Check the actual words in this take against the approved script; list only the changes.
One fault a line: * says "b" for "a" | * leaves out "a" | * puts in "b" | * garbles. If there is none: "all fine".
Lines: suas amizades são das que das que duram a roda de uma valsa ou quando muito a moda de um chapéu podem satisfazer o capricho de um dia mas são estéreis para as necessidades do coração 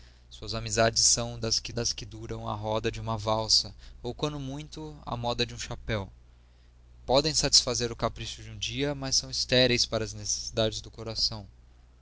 all fine